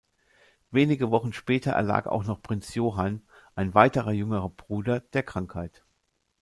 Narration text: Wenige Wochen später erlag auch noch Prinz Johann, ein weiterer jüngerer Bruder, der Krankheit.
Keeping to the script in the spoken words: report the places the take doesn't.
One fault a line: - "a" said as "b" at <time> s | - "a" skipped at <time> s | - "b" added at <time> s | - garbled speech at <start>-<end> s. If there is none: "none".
none